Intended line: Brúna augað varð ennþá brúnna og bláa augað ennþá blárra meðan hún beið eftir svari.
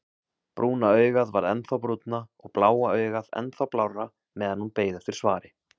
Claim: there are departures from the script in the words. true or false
false